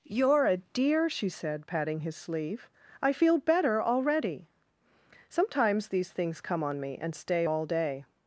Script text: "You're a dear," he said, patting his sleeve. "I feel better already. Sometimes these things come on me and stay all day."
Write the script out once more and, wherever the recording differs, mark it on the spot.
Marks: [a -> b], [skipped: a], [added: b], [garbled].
"You're a dear," [he -> she] said, patting his sleeve. "I feel better already. Sometimes these things come on me and stay all day."